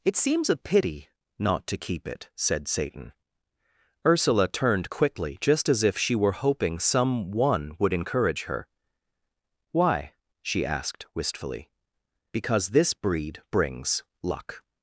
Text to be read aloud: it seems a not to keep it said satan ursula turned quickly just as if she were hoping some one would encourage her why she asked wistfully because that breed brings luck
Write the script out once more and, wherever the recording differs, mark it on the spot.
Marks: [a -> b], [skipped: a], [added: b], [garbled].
it seems a [added: pity] not to keep it said satan ursula turned quickly just as if she were hoping some one would encourage her why she asked wistfully because [that -> this] breed brings luck